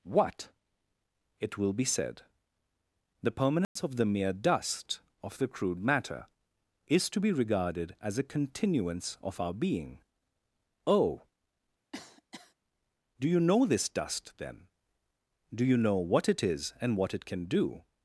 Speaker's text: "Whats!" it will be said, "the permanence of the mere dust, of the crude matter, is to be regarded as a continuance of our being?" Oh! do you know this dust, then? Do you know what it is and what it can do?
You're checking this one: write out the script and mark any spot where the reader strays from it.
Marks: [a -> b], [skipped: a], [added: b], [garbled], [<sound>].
["Whats!" -> What] it will be said, "the permanence [dropout] of the mere dust, of the crude matter, is to be regarded as a continuance of our being?" Oh! [cough] do you know this dust, then? Do you know what it is and what it can do?